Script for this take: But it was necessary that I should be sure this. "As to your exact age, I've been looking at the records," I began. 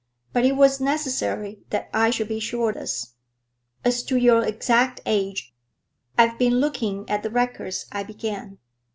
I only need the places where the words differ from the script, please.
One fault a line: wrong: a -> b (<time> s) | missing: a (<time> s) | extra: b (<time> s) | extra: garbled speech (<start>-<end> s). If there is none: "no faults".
no faults